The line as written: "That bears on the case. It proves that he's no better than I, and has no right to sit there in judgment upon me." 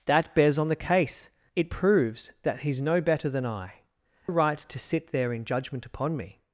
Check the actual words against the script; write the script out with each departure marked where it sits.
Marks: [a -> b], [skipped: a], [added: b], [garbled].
"That bears on the case. It proves that he's no better than I, [skipped: and has no] right to sit there in judgment upon me."